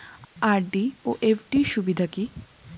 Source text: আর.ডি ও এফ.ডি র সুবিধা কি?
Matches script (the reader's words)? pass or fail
pass